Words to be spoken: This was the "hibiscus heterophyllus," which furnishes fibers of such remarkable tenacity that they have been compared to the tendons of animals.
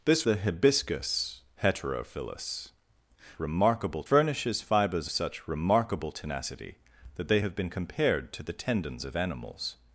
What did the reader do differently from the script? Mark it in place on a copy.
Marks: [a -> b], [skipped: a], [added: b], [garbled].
This [skipped: was] the "hibiscus heterophyllus," [which -> remarkable] furnishes fibers [skipped: of] such remarkable tenacity that they have been compared to the tendons of animals.